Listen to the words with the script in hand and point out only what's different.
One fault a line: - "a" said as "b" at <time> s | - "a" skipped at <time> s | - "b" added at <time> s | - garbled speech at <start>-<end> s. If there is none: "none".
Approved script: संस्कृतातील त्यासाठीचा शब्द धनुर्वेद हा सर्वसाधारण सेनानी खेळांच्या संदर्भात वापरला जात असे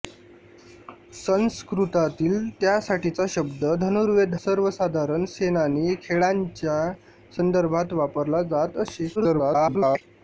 - "हा" skipped at 4.3 s
- garbled speech at 9.1-10.0 s